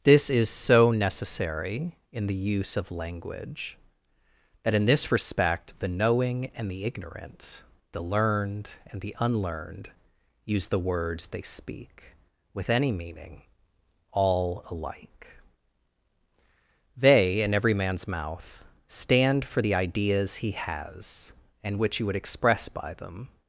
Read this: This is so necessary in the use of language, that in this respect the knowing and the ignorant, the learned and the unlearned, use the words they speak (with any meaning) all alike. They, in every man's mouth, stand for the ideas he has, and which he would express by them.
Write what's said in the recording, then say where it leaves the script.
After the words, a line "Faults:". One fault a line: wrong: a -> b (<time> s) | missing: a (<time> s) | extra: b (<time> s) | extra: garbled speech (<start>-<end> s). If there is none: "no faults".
This is so necessary in the use of language, that in this respect the knowing and the ignorant, the learned and the unlearned, use the words they speak (with any meaning) all alike. They, in every man's mouth, stand for the ideas he has, and which he would express by them.
Faults:
no faults